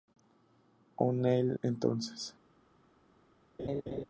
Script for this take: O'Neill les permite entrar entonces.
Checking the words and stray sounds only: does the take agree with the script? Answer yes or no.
no